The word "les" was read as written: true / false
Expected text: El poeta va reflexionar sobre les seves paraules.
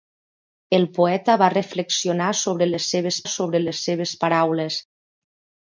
true